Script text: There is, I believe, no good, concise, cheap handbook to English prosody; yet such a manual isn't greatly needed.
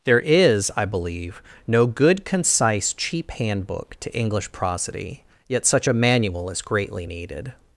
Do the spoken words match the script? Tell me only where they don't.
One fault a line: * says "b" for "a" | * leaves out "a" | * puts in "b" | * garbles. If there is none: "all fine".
* says "is" for "isn't"